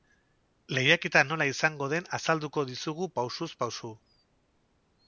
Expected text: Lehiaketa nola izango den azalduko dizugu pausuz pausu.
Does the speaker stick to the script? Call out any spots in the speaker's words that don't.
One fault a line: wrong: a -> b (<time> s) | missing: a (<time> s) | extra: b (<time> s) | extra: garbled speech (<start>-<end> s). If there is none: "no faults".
no faults